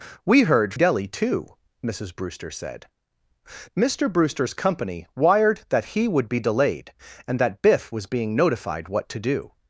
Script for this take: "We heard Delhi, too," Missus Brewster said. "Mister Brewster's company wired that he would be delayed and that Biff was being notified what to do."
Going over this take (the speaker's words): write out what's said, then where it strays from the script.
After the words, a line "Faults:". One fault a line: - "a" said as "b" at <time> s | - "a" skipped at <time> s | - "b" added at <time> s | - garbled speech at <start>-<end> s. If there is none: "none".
"We heard Delhi, too," Missus Brewster said. "Mister Brewster's company wired that he would be delayed and that Biff was being notified what to do."
Faults:
none